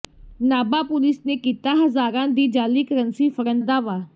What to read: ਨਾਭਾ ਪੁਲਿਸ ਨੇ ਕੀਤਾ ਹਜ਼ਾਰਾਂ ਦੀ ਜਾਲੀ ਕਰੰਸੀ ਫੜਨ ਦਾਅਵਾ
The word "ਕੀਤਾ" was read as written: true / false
true